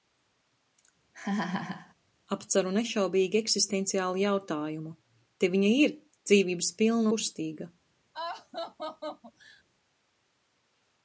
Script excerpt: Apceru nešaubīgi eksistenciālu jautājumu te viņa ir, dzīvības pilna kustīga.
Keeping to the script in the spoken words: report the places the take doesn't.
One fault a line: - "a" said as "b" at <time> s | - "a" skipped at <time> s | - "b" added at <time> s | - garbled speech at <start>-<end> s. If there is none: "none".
none